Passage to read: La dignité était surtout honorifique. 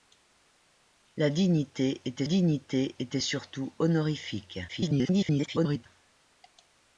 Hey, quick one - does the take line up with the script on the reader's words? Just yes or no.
no